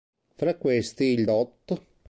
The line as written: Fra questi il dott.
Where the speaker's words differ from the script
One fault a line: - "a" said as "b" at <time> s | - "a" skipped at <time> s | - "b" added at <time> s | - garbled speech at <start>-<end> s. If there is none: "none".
none